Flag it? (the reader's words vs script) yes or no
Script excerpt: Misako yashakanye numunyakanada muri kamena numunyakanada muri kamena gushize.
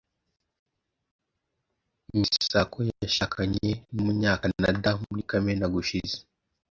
yes